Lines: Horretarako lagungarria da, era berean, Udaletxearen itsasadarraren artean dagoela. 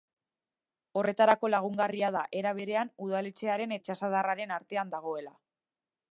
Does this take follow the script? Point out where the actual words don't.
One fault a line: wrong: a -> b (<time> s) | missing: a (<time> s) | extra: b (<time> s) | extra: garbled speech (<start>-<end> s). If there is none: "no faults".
no faults